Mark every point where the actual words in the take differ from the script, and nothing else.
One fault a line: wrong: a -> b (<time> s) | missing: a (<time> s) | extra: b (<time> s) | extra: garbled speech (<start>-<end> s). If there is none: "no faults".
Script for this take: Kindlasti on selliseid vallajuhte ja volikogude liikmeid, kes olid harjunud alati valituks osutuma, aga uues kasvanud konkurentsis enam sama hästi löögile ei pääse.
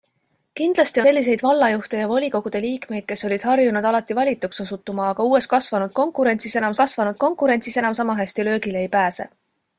missing: on (1.0 s)
extra: kasvanud konkurentsis enam (6.8 s)